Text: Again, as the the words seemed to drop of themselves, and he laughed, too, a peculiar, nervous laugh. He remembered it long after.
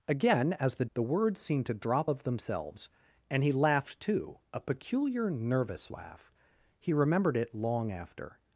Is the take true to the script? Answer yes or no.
yes